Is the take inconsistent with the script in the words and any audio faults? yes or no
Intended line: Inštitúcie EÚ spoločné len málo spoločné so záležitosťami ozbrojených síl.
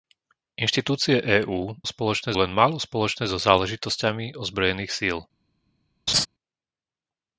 yes